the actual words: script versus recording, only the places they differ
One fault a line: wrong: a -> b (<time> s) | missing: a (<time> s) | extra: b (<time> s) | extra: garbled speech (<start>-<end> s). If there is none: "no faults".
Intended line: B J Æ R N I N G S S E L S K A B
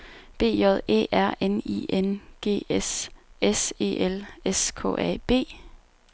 no faults